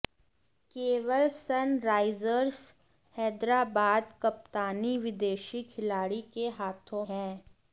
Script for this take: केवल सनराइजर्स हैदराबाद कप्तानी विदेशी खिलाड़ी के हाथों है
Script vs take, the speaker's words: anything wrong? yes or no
no